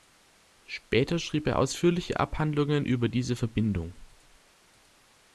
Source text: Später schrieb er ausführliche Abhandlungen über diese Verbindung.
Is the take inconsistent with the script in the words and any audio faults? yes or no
no